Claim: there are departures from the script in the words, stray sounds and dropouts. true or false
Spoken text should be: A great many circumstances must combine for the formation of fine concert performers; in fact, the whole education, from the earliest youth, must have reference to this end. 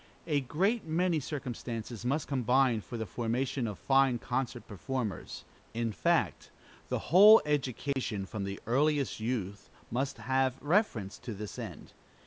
true